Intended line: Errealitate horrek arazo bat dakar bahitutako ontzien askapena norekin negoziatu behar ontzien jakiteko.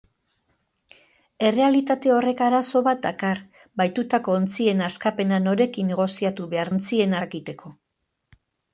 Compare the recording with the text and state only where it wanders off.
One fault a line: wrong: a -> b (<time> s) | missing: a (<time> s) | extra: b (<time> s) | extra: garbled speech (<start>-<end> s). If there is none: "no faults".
no faults